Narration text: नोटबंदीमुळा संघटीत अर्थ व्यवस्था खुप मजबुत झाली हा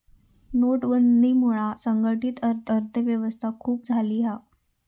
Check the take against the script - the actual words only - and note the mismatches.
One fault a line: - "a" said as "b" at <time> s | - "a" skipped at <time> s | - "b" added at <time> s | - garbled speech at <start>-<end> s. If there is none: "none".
- "अर्थ" added at 2.7 s
- "मजबुत" skipped at 3.9 s